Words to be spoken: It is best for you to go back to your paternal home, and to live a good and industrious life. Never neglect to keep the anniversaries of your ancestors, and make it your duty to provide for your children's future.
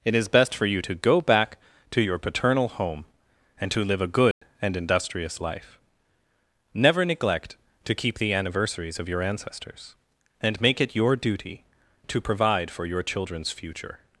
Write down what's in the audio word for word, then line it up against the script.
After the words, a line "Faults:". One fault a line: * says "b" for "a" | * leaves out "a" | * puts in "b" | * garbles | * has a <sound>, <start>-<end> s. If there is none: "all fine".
It is best for you to go back to your paternal home, and to live a good and industrious life. Never neglect to keep the anniversaries of your ancestors, and make it your duty to provide for your children's future.
Faults:
* has a dropout, 4.3-4.4 s